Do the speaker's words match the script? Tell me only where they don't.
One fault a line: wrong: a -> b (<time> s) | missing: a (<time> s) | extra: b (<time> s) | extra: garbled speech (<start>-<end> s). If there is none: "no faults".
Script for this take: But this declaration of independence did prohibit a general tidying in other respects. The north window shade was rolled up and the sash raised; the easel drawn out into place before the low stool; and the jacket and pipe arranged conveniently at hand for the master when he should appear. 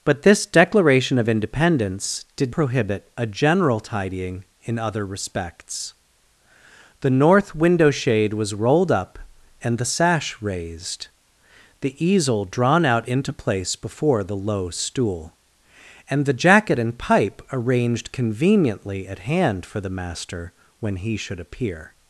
no faults